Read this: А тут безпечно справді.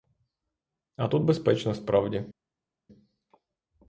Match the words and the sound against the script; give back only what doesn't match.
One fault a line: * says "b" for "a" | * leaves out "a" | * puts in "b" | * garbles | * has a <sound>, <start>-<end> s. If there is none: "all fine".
all fine